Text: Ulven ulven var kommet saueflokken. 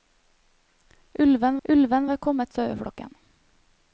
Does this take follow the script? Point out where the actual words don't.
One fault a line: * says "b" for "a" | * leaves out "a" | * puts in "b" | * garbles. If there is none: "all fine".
all fine